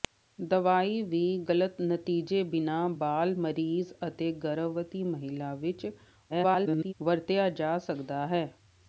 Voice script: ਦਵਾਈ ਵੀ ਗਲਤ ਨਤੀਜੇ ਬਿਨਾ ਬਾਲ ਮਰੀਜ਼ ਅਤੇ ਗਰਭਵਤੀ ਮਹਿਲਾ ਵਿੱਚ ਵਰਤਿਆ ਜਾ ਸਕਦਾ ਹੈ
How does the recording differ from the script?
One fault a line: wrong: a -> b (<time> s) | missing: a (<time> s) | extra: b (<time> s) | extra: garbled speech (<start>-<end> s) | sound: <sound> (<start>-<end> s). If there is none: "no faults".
extra: garbled speech (6.3-6.9 s)